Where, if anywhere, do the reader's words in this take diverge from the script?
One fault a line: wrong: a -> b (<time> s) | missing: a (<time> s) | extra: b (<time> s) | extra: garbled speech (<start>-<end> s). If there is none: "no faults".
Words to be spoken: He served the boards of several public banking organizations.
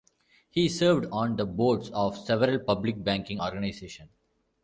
extra: on (1.1 s)